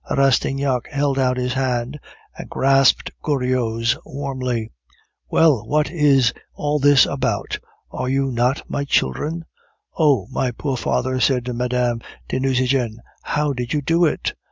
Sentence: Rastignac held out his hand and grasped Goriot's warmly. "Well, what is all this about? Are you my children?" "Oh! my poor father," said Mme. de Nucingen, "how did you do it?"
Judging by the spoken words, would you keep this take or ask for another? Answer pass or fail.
fail